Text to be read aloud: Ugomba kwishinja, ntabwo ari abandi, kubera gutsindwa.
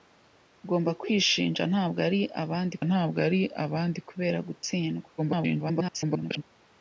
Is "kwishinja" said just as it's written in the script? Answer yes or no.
yes